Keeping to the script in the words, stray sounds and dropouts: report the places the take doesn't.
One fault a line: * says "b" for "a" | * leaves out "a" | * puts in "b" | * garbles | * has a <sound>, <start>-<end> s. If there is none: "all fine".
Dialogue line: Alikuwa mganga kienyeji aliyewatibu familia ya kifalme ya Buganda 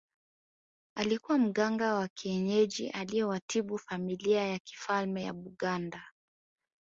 * puts in "wa"